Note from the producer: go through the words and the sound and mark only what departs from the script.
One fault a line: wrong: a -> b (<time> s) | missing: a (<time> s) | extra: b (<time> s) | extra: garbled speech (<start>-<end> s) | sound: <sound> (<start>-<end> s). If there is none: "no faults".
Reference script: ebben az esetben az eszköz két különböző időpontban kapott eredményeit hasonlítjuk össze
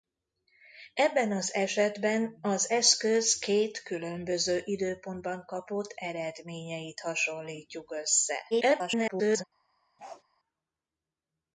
extra: garbled speech (8.5-9.4 s)
sound: bark (10.0-10.2 s)